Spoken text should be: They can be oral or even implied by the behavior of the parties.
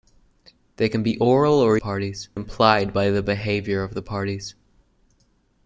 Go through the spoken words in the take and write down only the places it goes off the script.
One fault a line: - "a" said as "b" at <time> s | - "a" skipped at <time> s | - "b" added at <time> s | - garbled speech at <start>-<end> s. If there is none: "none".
- "even" said as "parties" at 1.8 s